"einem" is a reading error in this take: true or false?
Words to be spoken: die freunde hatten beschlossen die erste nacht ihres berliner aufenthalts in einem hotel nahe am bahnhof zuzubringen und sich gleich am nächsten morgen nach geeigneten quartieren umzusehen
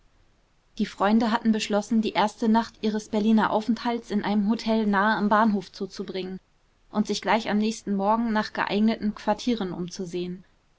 false